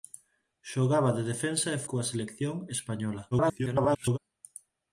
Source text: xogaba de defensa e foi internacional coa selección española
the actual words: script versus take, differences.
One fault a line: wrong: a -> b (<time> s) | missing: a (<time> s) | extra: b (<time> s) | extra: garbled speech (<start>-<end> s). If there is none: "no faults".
missing: foi internacional (1.8 s)
extra: garbled speech (3.3-4.2 s)